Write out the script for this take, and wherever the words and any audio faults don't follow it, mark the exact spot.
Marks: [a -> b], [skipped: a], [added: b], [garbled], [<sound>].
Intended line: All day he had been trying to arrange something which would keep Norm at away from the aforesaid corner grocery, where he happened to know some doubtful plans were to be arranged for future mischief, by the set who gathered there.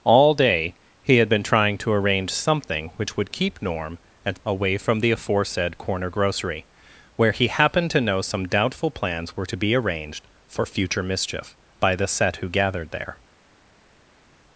All day he had been trying to arrange something which would keep Norm at away from the aforesaid corner grocery, where he happened to know some doubtful plans were to be arranged for future mischief, by the set who gathered there.